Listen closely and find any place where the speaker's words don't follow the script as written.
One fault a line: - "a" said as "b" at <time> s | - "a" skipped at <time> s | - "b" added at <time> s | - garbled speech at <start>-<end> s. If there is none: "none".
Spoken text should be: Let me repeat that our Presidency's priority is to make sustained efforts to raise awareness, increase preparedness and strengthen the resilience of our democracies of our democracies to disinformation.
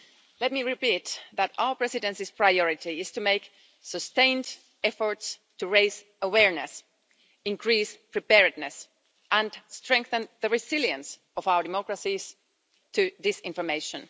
- "of our democracies" skipped at 12.3 s